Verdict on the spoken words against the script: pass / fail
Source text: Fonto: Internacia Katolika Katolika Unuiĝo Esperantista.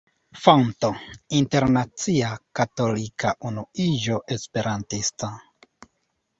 fail